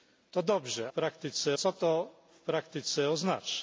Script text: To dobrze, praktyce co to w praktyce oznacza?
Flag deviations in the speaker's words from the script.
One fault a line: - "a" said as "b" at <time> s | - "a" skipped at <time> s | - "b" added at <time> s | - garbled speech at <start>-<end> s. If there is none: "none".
none